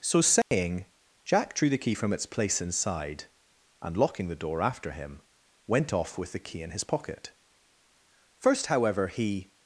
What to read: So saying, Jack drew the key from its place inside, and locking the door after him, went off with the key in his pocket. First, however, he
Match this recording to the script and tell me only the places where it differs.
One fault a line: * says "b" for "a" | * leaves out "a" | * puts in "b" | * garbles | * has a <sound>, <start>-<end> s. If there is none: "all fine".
* has a dropout, 0.4-0.5 s